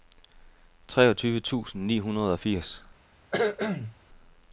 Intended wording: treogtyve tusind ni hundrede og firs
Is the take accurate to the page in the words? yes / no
yes